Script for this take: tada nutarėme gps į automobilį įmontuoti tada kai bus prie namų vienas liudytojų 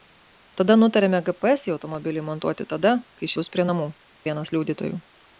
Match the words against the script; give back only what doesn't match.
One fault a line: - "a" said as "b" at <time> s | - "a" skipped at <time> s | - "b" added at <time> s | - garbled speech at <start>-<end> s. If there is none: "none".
none